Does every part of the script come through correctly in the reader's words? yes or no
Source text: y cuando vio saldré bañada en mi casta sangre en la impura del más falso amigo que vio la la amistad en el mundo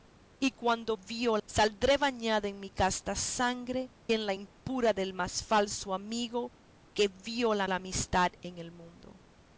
yes